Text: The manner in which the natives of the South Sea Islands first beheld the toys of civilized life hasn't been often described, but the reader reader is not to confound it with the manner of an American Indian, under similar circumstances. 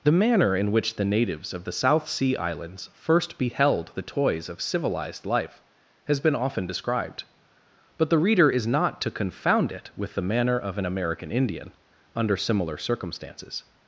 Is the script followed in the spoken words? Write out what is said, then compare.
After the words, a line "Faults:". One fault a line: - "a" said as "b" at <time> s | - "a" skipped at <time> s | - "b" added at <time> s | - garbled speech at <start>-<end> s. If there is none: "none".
The manner in which the natives of the South Sea Islands first beheld the toys of civilized life has been often described, but the reader is not to confound it with the manner of an American Indian, under similar circumstances.
Faults:
- "hasn't" said as "has" at 6.0 s
- "reader" skipped at 8.5 s